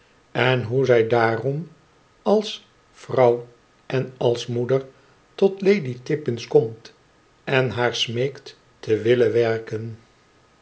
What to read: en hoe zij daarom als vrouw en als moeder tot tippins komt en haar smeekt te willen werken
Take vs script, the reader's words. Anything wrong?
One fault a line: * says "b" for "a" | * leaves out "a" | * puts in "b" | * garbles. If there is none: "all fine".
* puts in "lady"